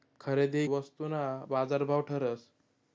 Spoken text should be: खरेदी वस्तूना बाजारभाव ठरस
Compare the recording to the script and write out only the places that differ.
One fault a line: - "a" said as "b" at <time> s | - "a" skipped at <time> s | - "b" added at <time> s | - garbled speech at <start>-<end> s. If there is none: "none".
none